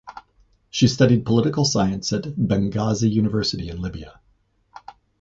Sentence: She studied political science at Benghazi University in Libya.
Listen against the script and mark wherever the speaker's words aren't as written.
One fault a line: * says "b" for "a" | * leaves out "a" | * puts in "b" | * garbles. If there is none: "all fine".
all fine